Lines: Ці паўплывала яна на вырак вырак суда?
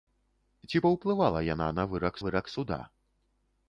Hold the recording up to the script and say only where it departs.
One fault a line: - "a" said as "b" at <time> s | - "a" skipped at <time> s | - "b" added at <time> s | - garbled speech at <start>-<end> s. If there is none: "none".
none